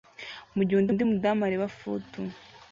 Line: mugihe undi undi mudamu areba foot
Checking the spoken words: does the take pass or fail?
pass